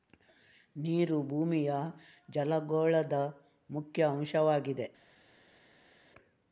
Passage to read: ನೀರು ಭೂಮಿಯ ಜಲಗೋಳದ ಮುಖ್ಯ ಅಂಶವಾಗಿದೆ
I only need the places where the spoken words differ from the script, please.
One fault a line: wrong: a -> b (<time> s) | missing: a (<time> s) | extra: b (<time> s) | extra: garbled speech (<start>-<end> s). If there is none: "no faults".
no faults